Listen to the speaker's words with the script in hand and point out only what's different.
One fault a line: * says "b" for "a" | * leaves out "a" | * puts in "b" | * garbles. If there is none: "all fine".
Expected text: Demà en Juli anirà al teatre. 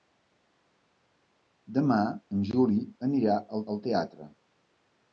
* puts in "al"